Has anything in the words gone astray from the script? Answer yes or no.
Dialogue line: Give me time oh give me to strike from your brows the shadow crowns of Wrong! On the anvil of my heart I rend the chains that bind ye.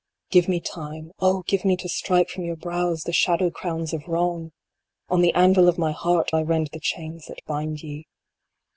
no